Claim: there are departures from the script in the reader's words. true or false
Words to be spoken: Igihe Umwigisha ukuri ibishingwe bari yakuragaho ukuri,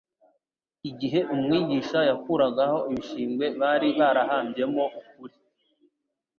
true